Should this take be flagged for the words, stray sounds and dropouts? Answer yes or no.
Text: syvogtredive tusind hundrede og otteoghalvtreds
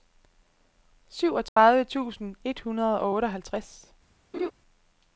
yes